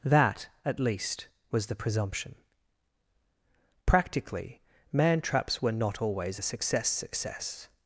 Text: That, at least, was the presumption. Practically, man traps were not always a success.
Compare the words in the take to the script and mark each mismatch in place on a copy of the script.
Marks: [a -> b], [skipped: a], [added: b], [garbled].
That, at least, was the presumption. Practically, man traps were not always a success. [added: success]